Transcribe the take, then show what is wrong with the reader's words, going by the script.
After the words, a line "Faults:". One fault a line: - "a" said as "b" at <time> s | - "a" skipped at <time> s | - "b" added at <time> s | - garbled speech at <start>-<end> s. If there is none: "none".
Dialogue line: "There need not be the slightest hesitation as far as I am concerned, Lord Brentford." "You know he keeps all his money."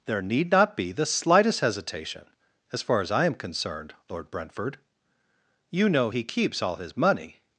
"There need not be the slightest hesitation as far as I am concerned, Lord Brentford." "You know he keeps all his money."
Faults:
none